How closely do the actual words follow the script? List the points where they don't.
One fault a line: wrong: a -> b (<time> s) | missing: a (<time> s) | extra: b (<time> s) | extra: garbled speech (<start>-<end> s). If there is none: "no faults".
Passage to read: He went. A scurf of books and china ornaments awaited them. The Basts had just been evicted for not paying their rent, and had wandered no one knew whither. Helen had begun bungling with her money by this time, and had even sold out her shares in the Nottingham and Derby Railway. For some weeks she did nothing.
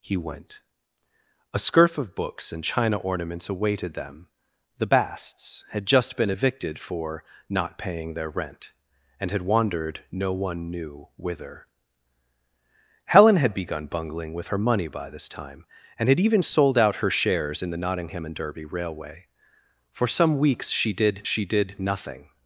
extra: she did (21.2 s)